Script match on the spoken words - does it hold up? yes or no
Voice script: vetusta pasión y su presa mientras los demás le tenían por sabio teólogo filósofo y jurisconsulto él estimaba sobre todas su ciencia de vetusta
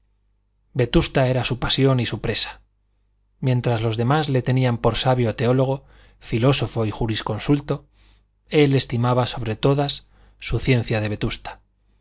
no